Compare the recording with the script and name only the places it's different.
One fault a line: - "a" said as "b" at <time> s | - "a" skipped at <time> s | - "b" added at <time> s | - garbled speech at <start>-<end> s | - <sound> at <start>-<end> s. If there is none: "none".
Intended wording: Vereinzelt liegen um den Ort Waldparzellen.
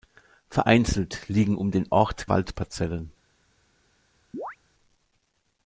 - chirp at 4.3-4.6 s